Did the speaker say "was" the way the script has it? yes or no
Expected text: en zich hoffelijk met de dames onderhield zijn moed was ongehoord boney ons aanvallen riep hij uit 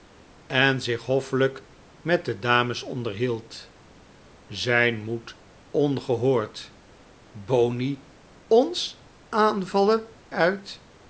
no